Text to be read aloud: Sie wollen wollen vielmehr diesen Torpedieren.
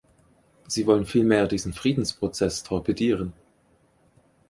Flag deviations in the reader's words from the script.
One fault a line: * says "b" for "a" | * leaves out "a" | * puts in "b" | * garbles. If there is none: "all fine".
* leaves out "wollen"
* puts in "Friedensprozess"